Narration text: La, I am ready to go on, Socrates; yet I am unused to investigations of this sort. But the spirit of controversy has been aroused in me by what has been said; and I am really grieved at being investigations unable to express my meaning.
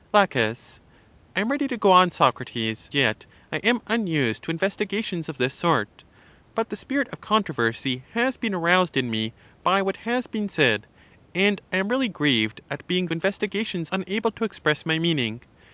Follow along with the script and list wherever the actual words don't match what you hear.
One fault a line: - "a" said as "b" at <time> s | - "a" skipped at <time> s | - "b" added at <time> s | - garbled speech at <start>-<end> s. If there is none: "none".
none